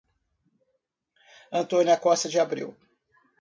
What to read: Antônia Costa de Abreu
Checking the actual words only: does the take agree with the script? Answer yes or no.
yes